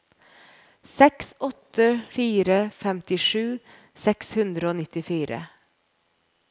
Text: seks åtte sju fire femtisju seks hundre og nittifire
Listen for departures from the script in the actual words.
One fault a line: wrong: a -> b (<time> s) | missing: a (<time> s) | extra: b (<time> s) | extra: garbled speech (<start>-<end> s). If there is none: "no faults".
missing: sju (2.0 s)